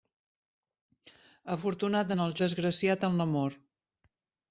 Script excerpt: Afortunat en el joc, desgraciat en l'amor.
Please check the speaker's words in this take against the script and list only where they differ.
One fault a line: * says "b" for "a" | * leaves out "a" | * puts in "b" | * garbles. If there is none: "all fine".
* leaves out "joc"